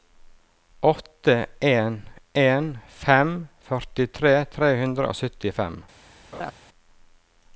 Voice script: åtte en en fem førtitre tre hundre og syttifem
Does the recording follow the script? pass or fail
pass